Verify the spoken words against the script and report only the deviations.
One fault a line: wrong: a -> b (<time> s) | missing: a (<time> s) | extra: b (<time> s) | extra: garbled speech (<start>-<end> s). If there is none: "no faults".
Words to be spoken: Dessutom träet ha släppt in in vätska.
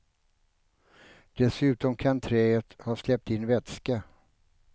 extra: kan (1.9 s)
missing: in (3.5 s)